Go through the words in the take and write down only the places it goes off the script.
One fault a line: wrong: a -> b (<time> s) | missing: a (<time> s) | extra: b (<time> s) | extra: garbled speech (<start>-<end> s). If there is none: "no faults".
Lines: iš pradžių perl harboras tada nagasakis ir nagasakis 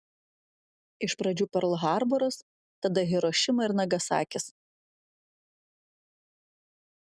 wrong: nagasakis -> hirošima (3.1 s)